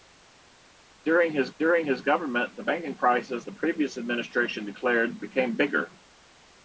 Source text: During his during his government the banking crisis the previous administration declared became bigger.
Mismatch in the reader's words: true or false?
false